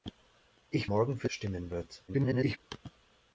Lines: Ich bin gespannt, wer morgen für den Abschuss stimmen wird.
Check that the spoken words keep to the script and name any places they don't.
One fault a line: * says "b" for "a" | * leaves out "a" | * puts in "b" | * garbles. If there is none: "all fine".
* leaves out "bin gespannt wer"
* leaves out "den Abschuss"
* garbles